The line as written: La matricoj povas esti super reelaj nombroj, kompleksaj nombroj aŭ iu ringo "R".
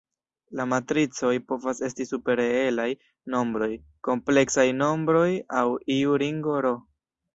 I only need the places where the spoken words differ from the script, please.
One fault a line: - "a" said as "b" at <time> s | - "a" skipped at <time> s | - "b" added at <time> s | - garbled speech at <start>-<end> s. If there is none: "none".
none